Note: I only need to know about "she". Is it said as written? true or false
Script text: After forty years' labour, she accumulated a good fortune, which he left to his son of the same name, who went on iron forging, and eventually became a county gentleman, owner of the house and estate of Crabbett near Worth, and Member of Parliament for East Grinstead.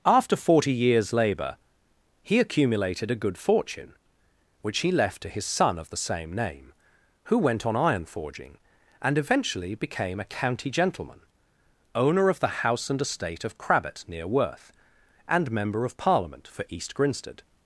false